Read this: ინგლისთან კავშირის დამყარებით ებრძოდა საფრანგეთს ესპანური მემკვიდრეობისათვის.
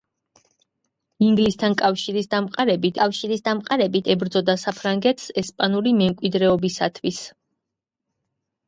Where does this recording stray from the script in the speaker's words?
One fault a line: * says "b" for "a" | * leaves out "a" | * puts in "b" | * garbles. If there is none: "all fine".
* puts in "კავშირის დამყარებით"